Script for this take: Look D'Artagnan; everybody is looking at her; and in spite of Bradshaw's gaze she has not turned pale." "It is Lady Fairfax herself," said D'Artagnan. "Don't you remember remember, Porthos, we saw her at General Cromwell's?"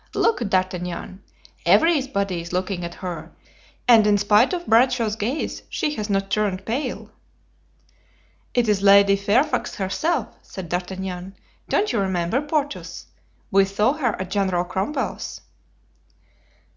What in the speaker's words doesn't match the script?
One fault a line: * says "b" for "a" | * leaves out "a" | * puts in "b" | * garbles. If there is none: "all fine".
* leaves out "remember"